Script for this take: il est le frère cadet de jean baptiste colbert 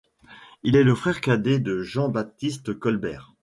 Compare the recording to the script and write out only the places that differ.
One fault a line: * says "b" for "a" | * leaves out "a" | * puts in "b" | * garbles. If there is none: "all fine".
all fine